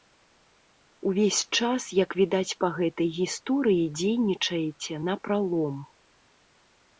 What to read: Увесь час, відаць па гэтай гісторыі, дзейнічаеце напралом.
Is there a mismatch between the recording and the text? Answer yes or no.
yes